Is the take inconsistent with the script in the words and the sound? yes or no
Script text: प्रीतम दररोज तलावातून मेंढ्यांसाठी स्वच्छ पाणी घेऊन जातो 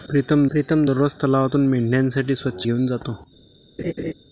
yes